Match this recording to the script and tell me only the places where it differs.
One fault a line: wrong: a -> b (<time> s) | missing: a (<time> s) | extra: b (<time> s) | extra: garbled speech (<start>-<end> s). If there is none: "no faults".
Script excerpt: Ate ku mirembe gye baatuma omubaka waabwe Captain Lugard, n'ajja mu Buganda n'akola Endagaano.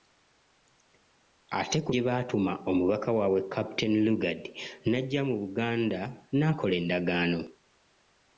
missing: mirembe (1.9 s)